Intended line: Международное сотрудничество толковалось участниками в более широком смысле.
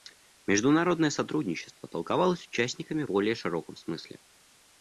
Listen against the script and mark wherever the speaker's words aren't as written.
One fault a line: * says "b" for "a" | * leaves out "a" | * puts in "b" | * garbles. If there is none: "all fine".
* leaves out "в"